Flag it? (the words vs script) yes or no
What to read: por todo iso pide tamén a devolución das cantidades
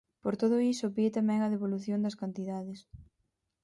no